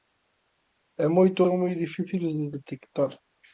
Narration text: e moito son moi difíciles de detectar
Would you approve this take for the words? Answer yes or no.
yes